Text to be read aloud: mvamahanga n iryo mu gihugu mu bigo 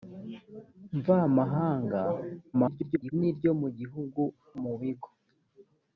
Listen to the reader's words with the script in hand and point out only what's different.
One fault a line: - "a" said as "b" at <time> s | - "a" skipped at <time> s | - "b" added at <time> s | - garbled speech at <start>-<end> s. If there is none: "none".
- garbled speech at 2.5-3.1 s